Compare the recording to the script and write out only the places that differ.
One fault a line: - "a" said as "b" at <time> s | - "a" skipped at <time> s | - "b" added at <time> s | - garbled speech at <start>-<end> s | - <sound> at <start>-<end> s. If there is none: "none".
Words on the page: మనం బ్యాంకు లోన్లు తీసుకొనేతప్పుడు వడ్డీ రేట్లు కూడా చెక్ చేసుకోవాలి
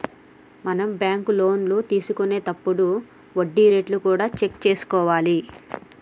none